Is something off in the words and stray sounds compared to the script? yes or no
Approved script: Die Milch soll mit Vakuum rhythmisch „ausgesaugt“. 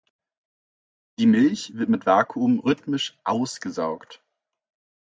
yes